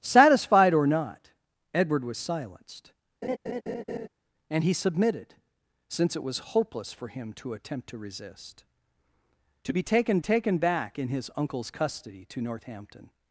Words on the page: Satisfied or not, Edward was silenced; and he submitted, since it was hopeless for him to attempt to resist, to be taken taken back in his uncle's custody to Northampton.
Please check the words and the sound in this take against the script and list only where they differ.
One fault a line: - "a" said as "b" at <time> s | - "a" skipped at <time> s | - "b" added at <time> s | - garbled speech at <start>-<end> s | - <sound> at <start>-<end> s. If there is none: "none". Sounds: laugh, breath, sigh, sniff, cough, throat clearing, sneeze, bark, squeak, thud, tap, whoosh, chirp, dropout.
- laugh at 3.2-4.1 s